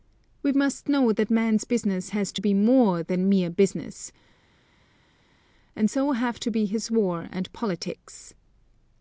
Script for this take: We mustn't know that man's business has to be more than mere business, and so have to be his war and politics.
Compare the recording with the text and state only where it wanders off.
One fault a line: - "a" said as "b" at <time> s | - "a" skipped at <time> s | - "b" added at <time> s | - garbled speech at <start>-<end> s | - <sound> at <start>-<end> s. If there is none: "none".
- "mustn't" said as "must" at 0.5 s